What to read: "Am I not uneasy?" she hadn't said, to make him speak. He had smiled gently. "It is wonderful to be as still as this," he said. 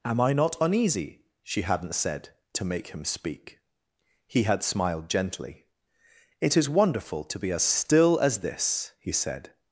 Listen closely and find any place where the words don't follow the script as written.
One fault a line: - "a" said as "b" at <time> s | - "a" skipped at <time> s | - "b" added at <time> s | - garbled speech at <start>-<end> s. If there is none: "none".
none